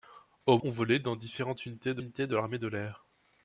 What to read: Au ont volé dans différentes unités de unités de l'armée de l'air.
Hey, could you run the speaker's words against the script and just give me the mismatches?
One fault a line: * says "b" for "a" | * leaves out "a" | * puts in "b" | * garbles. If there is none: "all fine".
all fine